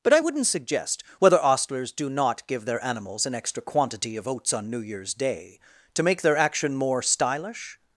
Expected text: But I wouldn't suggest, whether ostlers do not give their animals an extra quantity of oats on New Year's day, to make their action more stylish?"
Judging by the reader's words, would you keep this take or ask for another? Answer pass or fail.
pass